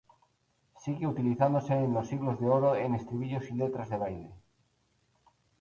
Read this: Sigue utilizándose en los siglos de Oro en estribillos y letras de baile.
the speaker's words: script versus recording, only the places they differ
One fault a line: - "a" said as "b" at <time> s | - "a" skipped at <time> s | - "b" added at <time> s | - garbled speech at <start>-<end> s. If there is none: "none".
none